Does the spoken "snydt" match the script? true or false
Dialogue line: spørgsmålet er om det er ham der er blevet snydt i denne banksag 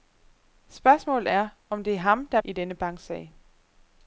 false